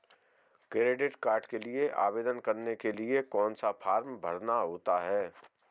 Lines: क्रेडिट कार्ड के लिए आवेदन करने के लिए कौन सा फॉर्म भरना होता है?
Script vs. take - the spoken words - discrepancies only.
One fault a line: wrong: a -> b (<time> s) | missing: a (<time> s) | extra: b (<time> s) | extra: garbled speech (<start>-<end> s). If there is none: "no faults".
no faults